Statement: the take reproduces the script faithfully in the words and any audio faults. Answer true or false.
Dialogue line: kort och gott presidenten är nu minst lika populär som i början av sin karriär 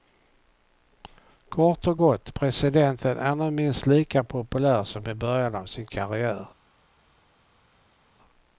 true